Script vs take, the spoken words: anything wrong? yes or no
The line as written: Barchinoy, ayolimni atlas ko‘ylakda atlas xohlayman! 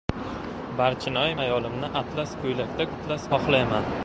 no